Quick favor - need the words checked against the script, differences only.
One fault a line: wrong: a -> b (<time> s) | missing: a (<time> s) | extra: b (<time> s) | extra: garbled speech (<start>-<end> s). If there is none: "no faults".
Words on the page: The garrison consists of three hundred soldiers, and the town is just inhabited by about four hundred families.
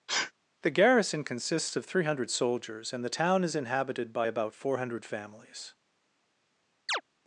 missing: just (3.6 s)